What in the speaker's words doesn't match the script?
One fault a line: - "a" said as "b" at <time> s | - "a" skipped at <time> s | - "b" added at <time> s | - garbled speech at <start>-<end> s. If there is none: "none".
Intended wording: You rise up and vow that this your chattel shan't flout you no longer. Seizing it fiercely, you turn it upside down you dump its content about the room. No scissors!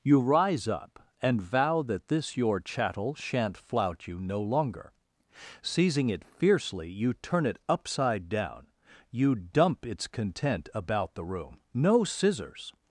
none